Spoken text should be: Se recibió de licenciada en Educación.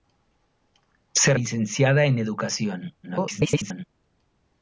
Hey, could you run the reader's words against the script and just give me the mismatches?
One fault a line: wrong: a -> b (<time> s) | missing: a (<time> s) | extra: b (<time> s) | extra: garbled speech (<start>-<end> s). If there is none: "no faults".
missing: recibió de (1.4 s)
extra: garbled speech (3.0-3.8 s)